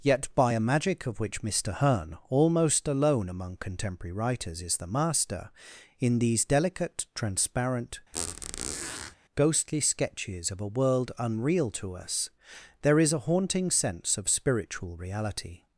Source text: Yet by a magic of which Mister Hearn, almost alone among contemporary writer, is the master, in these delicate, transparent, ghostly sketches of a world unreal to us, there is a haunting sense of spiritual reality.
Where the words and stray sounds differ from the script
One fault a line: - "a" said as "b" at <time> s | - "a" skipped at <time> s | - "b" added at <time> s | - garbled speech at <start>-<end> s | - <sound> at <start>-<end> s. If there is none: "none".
- "writer" said as "writers" at 4.1 s
- squeak at 8.1-9.2 s